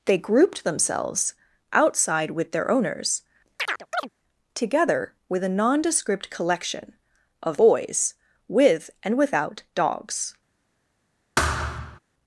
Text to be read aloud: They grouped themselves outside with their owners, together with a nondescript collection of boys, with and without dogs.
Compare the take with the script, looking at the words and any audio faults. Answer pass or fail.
fail